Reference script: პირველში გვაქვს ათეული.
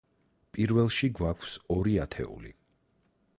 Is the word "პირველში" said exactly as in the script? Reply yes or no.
yes